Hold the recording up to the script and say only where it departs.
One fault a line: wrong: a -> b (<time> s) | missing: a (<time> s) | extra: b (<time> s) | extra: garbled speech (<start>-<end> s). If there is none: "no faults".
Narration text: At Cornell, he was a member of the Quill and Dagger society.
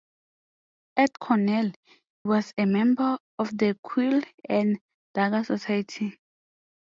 missing: he (1.7 s)